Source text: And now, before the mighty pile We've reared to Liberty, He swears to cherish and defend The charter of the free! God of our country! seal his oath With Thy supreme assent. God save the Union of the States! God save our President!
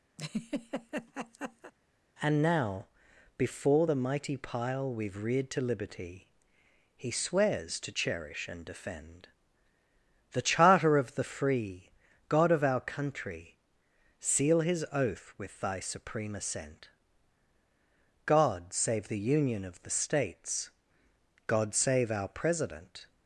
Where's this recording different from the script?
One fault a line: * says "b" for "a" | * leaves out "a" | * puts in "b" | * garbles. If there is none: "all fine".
all fine